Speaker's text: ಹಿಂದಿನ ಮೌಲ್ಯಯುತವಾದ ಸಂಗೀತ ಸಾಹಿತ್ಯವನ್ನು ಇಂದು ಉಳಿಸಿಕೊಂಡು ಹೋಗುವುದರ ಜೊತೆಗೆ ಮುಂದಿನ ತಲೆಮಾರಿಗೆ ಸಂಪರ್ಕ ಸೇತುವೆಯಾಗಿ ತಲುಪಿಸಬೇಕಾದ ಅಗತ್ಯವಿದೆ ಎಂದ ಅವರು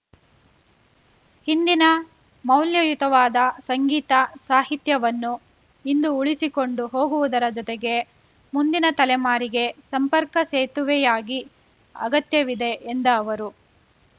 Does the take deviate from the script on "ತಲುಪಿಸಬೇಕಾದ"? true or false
true